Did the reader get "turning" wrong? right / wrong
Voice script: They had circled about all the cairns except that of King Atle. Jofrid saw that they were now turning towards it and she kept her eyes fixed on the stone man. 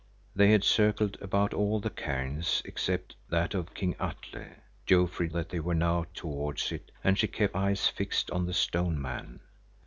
wrong